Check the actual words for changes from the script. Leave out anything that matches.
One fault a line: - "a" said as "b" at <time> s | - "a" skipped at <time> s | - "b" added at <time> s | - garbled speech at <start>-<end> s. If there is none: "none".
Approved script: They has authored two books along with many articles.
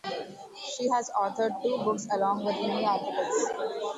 - "They" said as "She" at 0.7 s